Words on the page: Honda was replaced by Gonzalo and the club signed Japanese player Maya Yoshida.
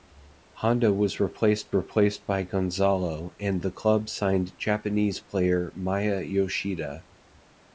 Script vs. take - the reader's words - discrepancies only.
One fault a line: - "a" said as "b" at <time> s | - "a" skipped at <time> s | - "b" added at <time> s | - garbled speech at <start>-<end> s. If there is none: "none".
- "replaced" added at 1.7 s